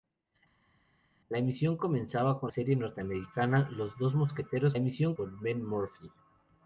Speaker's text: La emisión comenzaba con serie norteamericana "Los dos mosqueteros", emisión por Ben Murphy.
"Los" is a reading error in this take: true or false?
false